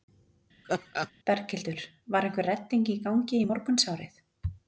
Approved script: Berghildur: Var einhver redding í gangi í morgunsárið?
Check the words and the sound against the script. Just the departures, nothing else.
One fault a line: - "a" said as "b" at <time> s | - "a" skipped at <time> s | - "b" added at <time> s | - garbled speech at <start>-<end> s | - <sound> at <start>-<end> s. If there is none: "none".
- laugh at 0.6-1.1 s